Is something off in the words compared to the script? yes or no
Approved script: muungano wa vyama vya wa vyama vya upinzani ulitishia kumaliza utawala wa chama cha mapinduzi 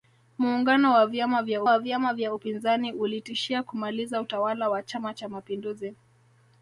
no